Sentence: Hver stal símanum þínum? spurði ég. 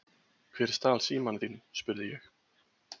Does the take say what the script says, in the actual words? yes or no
yes